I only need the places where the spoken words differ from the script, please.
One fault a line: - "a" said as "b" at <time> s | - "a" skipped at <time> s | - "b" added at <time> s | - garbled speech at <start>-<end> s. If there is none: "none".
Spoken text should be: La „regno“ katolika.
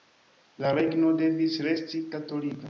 - "devis resti" added at 1.2 s